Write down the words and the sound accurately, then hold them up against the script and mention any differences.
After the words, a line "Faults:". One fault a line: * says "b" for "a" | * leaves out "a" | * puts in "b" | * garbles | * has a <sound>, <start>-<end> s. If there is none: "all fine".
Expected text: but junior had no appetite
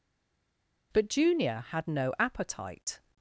but junior had no appetite
Faults:
all fine